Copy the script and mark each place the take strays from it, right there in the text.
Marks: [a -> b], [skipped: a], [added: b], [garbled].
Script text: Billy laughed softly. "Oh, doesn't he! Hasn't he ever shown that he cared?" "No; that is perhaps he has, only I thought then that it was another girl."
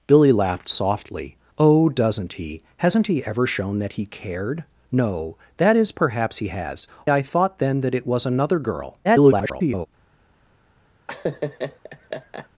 Billy laughed softly. "Oh, doesn't he! Hasn't he ever shown that he cared?" "No; that is perhaps he has, [skipped: only] I thought then that it was another girl." [garbled]